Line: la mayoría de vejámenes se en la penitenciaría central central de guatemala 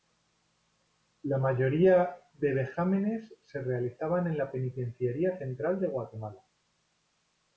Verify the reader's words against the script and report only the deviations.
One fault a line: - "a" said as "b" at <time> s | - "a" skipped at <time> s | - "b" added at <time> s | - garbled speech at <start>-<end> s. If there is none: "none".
- "realizaban" added at 3.6 s
- "central" skipped at 5.8 s